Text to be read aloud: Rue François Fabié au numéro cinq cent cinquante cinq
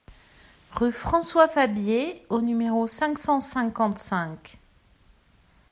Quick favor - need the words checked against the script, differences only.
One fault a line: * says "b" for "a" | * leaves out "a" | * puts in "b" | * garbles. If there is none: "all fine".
all fine